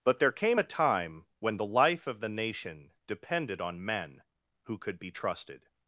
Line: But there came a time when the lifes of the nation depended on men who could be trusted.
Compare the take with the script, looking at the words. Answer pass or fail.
fail